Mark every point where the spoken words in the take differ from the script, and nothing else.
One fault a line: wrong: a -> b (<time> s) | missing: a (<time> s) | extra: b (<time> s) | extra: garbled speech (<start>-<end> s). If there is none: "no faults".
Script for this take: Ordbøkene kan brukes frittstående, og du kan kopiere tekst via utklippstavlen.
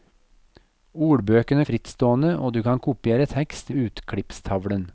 missing: kan brukes (1.6 s)
missing: via (3.7 s)